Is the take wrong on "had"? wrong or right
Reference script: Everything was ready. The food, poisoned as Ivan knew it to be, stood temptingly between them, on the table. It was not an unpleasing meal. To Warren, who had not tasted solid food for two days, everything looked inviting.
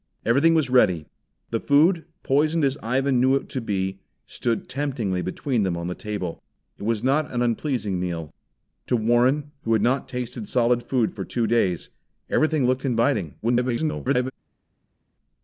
right